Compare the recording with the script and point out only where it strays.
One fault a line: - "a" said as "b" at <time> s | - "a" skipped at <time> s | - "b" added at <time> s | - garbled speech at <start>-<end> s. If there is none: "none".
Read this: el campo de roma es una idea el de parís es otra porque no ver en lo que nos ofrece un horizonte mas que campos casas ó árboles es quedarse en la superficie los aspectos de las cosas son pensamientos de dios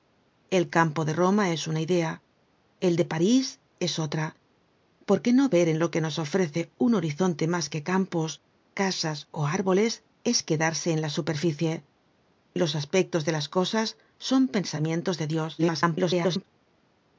- garbled speech at 15.6-16.5 s